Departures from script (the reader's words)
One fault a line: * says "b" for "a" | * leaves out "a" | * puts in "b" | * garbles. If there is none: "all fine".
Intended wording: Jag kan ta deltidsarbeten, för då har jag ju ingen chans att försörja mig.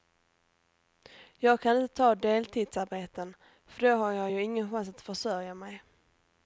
* puts in "inte"